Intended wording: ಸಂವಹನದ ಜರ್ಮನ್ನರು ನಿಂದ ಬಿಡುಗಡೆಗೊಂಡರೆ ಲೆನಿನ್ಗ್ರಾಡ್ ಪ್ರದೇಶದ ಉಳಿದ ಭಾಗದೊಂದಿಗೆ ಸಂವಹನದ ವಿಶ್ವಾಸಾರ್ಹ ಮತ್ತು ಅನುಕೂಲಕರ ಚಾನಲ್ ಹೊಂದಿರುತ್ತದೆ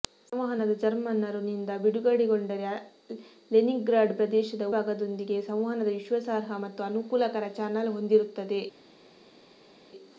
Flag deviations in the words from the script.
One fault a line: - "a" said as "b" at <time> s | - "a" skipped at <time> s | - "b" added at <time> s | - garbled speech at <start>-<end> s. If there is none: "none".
- "ಉಳಿದ" skipped at 4.7 s